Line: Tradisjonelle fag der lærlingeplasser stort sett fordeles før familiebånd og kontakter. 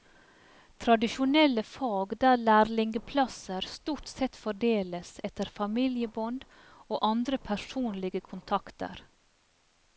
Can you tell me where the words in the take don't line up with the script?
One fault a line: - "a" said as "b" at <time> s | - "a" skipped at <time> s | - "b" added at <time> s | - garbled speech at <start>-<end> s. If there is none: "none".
- "før" said as "etter" at 5.3 s
- "andre personlige" added at 7.1 s